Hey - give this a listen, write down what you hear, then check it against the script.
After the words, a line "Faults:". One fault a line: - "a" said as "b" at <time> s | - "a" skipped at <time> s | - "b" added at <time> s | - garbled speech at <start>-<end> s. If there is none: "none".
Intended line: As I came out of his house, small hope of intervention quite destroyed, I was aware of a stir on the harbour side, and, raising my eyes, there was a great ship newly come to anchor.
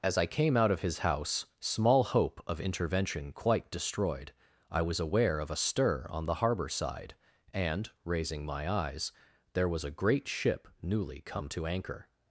As I came out of his house, small hope of intervention quite destroyed, I was aware of a stir on the harbour side, and, raising my eyes, there was a great ship newly come to anchor.
Faults:
none